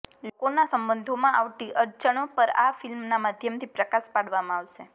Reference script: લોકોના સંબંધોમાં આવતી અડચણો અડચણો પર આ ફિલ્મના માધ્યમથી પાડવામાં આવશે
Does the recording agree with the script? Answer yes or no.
no